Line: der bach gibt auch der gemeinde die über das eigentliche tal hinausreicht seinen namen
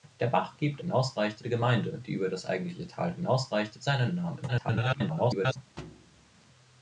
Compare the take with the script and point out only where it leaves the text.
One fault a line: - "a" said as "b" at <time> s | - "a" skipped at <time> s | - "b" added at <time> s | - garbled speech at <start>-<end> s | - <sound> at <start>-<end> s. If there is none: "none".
- "auch" said as "hinausreicht" at 0.8 s
- garbled speech at 4.5-5.6 s
- thud at 5.8-6.5 s